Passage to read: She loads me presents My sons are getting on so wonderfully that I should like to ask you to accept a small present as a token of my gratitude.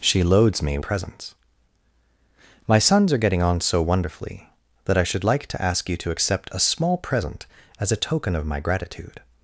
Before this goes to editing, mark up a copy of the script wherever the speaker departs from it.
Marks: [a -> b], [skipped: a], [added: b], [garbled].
She loads me presents My sons are getting on so wonderfully that I should like to ask you to accept a small present as a token of my gratitude.